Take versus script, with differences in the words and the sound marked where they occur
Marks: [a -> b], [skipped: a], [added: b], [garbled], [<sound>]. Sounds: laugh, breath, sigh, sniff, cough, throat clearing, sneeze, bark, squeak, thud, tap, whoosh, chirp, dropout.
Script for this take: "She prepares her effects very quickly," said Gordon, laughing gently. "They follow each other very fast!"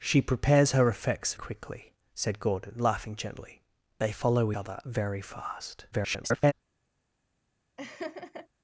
"She prepares her effects [skipped: very] quickly," said Gordon, laughing gently. "They follow [skipped: each] other very fast!" [garbled] [laugh]